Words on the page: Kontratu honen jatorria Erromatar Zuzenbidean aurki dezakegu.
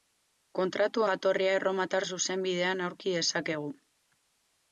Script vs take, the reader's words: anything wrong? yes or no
yes